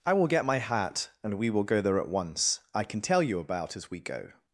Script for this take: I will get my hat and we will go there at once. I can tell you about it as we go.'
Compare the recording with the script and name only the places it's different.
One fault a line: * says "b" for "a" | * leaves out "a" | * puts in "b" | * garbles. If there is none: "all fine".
* leaves out "it"